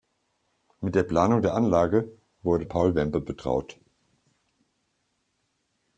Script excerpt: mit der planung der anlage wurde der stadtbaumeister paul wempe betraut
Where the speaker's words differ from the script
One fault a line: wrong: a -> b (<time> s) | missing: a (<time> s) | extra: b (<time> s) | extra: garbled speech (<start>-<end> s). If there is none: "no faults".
missing: der stadtbaumeister (2.6 s)